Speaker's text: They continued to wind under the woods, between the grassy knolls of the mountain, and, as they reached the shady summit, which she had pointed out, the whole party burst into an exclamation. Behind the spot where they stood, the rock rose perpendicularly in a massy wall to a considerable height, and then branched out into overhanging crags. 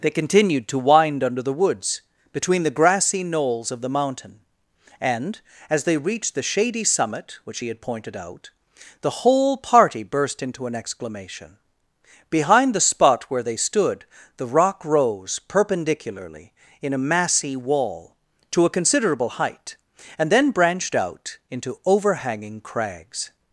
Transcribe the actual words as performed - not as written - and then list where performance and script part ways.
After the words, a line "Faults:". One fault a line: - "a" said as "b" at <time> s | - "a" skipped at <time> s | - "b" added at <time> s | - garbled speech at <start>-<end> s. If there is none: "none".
They continued to wind under the woods, between the grassy knolls of the mountain, and, as they reached the shady summit, which he had pointed out, the whole party burst into an exclamation. Behind the spot where they stood, the rock rose perpendicularly in a massy wall to a considerable height, and then branched out into overhanging crags.
Faults:
- "she" said as "he" at 7.6 s